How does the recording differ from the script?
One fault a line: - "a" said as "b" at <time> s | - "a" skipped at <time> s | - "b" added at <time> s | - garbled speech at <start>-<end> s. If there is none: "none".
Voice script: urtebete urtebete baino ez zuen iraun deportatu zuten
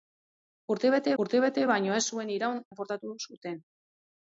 none